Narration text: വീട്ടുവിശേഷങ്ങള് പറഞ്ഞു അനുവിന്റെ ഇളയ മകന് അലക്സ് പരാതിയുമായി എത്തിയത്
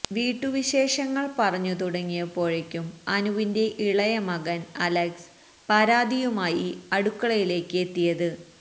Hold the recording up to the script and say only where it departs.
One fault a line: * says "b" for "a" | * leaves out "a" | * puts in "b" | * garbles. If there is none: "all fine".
* puts in "തുടങ്ങിയപ്പോഴേക്കും"
* puts in "അടുക്കളയിലേക്ക്"